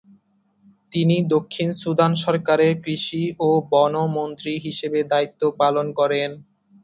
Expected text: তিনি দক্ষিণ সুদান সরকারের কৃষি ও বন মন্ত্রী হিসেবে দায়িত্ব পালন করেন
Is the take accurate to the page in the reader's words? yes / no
yes